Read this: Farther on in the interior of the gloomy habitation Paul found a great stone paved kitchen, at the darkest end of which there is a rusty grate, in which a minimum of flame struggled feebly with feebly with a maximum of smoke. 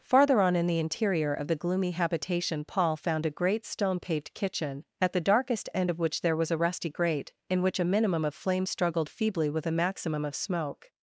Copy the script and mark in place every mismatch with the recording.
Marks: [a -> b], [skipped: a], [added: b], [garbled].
Farther on in the interior of the gloomy habitation Paul found a great stone paved kitchen, at the darkest end of which there [is -> was] a rusty grate, in which a minimum of flame struggled feebly with [skipped: feebly with] a maximum of smoke.